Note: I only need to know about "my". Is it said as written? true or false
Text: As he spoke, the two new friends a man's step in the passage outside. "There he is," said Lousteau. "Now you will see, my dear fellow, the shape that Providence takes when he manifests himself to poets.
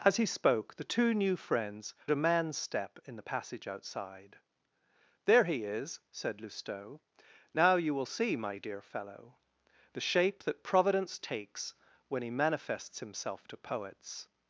true